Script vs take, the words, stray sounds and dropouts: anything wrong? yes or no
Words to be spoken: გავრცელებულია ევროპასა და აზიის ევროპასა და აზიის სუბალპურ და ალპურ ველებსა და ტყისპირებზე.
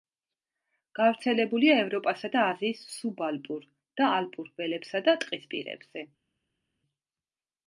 yes